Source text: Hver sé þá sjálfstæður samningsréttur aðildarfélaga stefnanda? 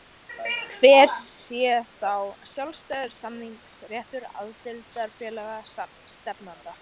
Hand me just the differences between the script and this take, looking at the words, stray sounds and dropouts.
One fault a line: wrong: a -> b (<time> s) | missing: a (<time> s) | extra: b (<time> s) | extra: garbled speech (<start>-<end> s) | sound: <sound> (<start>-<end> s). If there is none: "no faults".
no faults